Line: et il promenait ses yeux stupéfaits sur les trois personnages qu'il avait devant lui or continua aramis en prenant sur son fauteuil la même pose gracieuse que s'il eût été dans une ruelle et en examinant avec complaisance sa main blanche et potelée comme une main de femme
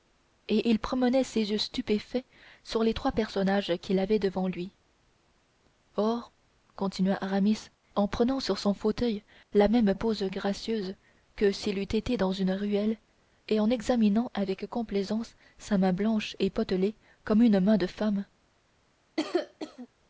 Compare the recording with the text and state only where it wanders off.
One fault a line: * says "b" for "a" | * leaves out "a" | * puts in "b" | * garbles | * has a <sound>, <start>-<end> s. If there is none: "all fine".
* has a cough, 19.2-19.9 s